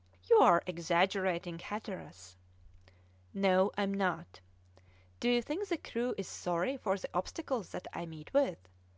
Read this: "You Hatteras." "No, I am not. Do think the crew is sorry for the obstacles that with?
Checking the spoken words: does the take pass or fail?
fail